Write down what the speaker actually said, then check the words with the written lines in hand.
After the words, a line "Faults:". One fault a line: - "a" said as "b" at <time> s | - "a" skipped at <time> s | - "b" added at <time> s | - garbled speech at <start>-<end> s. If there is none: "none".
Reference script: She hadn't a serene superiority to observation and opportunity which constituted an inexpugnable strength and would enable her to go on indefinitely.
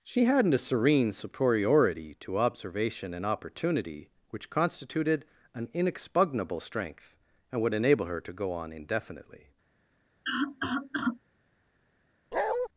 She hadn't a serene superiority to observation and opportunity which constituted an inexpugnable strength and would enable her to go on indefinitely.
Faults:
none